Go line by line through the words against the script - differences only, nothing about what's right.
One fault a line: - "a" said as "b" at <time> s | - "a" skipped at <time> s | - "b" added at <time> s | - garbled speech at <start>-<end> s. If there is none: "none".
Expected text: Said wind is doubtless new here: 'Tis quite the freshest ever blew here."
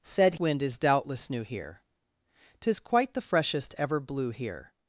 none